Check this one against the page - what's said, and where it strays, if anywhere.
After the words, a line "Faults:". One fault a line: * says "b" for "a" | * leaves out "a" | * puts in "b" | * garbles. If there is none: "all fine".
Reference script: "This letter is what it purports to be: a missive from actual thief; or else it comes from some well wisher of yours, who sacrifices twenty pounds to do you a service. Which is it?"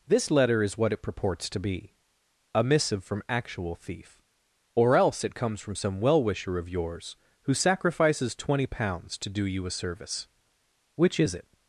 "This letter is what it purports to be: a missive from actual thief; or else it comes from some well wisher of yours, who sacrifices twenty pounds to do you a service. Which is it?"
Faults:
all fine